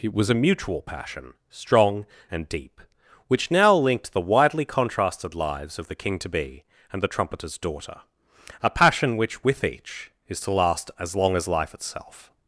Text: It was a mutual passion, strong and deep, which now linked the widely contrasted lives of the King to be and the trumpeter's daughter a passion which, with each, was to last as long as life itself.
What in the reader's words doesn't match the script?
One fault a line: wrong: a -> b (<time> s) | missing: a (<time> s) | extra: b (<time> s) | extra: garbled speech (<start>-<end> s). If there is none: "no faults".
wrong: was -> is (10.3 s)